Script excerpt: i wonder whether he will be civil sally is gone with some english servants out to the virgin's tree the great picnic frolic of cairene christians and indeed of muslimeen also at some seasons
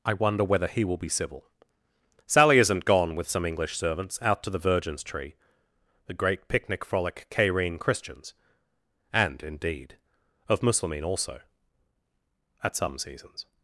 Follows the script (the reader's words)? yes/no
no